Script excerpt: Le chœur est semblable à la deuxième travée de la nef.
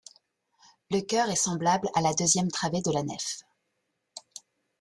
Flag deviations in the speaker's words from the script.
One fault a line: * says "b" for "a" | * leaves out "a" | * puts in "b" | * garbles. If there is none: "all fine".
all fine